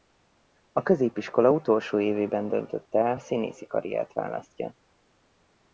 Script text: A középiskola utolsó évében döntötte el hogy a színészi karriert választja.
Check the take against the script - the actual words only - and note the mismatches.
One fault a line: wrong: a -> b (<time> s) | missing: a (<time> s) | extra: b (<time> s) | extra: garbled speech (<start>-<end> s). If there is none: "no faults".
missing: hogy (3.2 s)